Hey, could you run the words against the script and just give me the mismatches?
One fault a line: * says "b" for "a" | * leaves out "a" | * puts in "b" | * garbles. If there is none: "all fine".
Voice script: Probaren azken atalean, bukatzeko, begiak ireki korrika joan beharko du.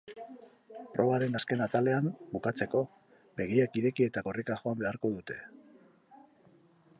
* puts in "eta"
* says "dute" for "du"